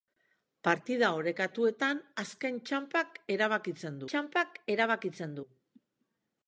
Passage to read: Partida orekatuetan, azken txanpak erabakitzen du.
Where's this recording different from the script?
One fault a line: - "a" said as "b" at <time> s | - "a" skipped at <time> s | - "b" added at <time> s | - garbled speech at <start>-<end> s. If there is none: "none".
- "txanpak erabakitzen" added at 4.1 s